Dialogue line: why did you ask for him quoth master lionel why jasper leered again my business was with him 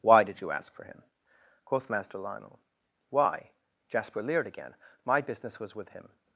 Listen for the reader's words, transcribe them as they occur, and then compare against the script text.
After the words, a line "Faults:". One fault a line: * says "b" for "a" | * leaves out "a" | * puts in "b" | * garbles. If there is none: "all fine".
why did you ask for him quoth master lionel why jasper leered again my business was with him
Faults:
all fine